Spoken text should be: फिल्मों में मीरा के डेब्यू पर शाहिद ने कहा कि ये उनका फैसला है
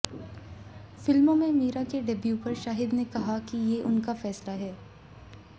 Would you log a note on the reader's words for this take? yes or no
no